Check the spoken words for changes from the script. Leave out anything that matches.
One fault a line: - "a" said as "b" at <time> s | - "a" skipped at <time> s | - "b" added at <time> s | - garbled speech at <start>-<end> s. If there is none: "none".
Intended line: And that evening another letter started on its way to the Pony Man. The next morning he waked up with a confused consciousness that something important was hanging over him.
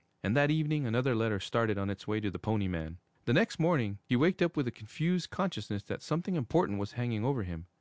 none